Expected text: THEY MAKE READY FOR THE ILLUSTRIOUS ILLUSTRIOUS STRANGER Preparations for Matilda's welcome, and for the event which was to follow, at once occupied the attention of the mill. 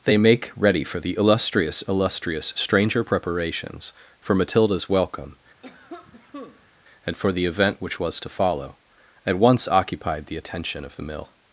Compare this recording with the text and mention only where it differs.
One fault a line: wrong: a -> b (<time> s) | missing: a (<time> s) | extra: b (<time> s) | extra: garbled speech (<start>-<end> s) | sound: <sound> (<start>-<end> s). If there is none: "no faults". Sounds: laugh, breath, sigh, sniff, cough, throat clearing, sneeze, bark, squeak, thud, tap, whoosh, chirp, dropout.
sound: cough (5.6-6.7 s)